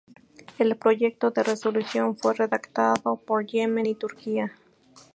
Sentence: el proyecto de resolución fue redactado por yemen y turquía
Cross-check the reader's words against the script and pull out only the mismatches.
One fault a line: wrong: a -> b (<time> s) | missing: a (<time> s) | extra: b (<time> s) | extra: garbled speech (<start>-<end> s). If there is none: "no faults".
no faults